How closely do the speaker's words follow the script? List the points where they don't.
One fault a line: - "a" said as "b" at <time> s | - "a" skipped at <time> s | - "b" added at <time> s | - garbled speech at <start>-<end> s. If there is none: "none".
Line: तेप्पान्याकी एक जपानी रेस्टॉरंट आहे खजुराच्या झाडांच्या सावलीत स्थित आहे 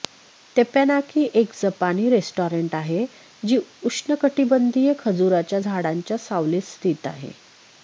- "जी उष्णकटिबंधीय" added at 3.4 s